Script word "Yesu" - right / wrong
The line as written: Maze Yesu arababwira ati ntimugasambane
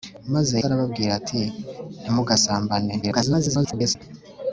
wrong